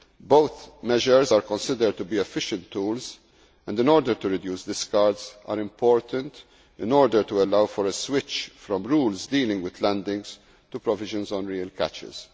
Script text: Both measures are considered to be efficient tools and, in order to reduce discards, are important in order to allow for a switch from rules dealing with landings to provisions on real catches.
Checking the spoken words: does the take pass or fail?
pass